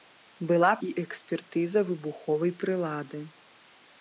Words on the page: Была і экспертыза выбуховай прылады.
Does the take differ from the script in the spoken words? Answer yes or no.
no